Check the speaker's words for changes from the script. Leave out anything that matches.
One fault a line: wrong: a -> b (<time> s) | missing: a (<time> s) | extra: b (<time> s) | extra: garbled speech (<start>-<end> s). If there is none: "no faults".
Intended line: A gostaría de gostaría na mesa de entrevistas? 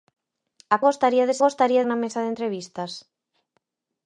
no faults